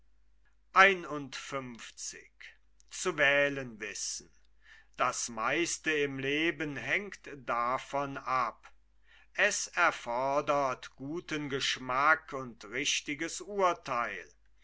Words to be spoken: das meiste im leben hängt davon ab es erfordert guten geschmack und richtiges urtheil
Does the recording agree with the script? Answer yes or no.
yes